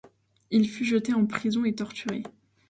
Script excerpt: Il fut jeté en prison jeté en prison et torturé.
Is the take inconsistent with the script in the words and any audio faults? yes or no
yes